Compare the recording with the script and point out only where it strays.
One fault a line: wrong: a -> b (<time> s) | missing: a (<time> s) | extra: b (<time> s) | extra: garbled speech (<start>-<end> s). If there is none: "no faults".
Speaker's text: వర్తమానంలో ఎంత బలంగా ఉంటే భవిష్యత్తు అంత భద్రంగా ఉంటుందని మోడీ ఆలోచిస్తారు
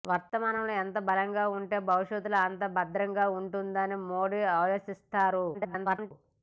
extra: garbled speech (5.5-6.1 s)